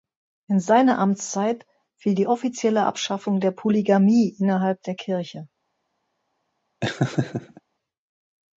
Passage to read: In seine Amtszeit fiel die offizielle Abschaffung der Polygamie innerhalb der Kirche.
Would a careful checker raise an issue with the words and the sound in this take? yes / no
yes